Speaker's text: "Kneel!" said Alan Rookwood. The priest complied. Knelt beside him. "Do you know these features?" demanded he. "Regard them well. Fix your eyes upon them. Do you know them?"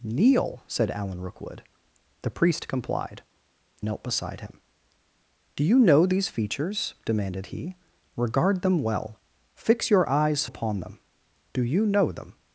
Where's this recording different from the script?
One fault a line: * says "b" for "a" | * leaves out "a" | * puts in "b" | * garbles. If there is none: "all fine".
all fine